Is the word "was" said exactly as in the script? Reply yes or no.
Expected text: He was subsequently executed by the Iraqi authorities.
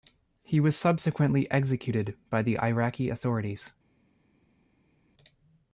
yes